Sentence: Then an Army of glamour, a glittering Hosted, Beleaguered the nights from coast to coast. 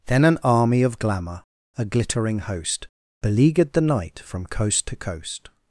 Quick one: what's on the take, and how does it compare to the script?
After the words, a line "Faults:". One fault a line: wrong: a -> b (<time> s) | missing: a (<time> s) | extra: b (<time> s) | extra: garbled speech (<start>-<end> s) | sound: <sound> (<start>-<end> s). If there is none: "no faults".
Then an Army of glamour, a glittering Host, Beleaguered the night from coast to coast.
Faults:
wrong: Hosted -> Host (2.4 s)
wrong: nights -> night (3.8 s)